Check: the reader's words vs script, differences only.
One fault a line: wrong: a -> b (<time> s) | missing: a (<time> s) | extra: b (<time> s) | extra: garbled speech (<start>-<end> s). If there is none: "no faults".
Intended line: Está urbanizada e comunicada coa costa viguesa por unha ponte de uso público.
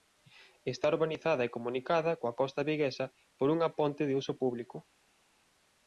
no faults